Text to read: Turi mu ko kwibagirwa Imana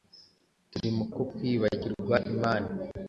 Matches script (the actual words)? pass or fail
pass